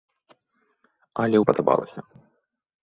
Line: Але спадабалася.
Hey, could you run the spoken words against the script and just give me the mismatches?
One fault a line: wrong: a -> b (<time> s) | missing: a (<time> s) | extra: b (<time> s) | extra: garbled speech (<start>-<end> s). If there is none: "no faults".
no faults